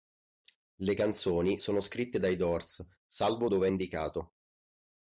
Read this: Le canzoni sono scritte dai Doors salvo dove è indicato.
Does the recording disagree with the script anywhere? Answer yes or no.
no